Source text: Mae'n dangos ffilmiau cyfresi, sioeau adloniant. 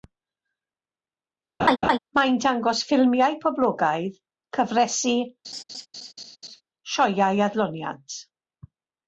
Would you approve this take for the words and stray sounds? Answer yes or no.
no